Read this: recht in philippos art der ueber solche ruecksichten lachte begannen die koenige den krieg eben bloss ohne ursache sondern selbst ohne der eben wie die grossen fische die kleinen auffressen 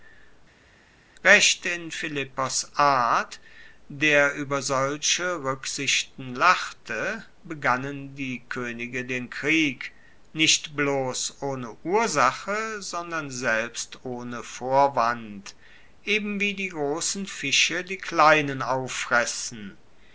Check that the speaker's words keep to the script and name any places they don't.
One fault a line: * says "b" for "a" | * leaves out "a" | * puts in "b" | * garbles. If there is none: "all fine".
* says "nicht" for "eben"
* says "vorwand" for "der"